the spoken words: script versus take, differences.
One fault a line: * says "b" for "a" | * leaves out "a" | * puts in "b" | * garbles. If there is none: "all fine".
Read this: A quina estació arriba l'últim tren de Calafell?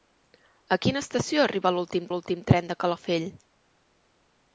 * puts in "l'últim"